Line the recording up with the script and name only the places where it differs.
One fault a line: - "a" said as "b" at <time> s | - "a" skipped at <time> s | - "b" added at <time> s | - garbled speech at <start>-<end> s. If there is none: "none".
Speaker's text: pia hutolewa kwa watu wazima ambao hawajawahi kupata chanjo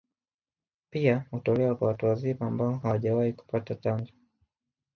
none